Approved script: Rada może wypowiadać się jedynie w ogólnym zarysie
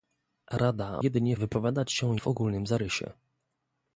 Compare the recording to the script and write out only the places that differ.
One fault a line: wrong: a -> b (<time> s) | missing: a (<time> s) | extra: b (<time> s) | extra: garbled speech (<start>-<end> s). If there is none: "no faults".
wrong: może -> jedynie (1.0 s)
missing: jedynie (2.1 s)